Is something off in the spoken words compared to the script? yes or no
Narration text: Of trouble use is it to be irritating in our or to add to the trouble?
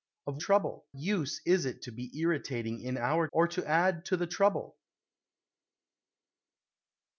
no